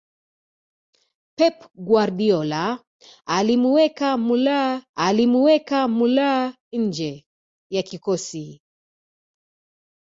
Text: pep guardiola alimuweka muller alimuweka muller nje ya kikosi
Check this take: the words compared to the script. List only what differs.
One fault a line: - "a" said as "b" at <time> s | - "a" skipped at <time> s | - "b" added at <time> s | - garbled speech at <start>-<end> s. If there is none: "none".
none